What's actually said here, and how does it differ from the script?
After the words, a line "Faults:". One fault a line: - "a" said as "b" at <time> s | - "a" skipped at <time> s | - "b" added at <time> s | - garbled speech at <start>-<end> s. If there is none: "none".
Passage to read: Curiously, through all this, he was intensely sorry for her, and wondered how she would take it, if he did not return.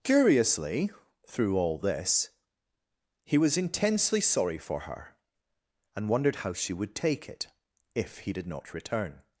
Curiously, through all this, he was intensely sorry for her, and wondered how she would take it, if he did not return.
Faults:
none